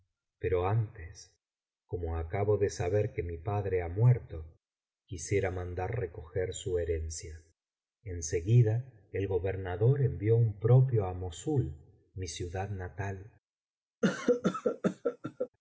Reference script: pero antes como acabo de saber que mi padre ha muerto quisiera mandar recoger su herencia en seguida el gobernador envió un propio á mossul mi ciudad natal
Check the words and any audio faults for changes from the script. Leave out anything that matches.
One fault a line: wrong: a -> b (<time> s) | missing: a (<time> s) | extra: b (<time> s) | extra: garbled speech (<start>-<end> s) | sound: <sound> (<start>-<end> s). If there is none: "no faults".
sound: cough (14.0-15.5 s)